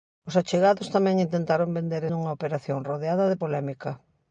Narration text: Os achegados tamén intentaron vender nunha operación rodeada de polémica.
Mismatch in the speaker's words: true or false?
false